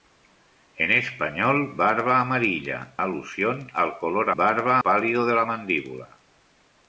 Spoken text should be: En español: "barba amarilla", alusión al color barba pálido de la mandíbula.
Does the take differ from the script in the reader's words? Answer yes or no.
no